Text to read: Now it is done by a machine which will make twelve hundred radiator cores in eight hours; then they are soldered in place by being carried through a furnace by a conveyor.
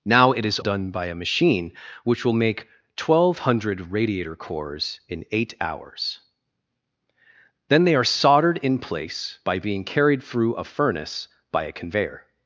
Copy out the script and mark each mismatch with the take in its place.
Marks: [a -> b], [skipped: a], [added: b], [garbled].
Now it is done by a machine which will make twelve hundred radiator cores in eight hours; then they are soldered in place by being carried through a furnace by a conveyor.